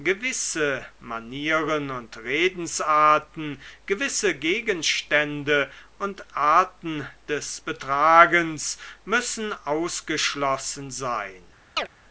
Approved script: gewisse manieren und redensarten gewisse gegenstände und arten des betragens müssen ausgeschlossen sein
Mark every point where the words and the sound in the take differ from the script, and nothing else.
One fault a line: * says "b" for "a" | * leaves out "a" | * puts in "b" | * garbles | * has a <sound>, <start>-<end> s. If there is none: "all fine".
* has a chirp, 11.8-11.9 s